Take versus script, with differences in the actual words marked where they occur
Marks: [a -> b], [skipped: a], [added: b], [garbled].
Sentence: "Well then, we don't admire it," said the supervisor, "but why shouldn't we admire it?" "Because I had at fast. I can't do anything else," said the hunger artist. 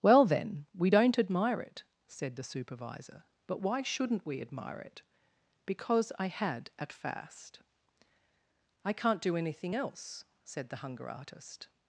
"Well then, we don't admire it," said the supervisor, "but why shouldn't we admire it?" "Because I had at fast. I can't do anything else," said the hunger artist.